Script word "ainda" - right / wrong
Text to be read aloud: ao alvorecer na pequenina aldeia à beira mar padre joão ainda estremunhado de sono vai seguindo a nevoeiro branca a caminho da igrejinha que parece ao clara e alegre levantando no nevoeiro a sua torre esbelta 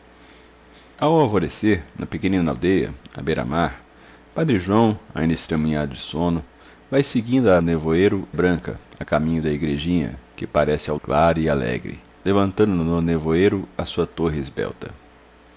right